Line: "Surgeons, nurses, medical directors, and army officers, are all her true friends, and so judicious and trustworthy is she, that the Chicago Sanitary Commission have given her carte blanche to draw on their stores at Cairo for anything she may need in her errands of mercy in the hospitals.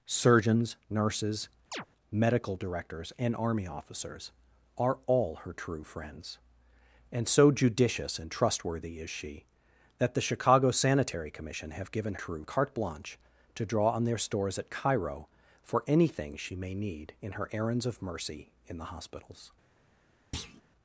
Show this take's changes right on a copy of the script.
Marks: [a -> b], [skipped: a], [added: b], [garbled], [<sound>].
"Surgeons, nurses, [chirp] medical directors, and army officers, are all her true friends, and so judicious and trustworthy is she, that the Chicago Sanitary Commission have given [her -> true] carte blanche to draw on their stores at Cairo for anything she may need in her errands of mercy in the hospitals. [thud]